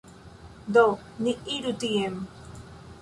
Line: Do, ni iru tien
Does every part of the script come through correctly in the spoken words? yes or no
yes